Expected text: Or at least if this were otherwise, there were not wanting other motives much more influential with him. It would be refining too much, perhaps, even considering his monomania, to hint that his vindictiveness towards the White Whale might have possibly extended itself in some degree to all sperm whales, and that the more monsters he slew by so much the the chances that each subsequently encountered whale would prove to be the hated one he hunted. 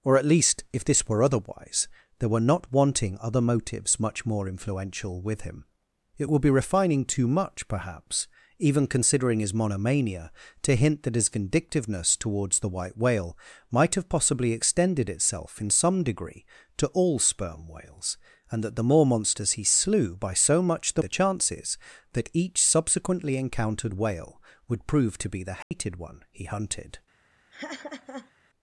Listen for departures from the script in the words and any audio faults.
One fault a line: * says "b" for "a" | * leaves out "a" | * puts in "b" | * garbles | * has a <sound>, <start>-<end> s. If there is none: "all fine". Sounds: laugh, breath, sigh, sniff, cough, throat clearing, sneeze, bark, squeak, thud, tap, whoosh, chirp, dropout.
* has a dropout, 25.6-25.7 s
* has a laugh, 27.5-28.3 s